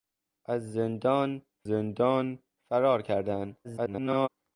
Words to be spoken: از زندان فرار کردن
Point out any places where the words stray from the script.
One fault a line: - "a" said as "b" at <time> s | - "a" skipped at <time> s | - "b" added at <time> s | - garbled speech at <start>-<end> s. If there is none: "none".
- "زندان" added at 1.7 s
- garbled speech at 3.6-4.3 s